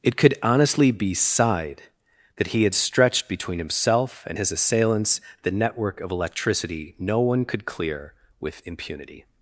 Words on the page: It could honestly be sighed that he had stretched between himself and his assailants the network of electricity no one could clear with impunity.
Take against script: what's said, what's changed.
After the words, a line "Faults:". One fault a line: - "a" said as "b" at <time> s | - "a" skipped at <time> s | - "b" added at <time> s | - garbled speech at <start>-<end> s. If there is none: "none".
It could honestly be sighed that he had stretched between himself and his assailants the network of electricity no one could clear with impunity.
Faults:
none